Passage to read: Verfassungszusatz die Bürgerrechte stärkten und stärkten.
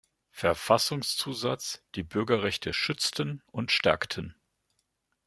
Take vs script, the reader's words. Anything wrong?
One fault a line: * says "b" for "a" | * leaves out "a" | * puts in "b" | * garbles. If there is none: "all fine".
* says "schützten" for "stärkten"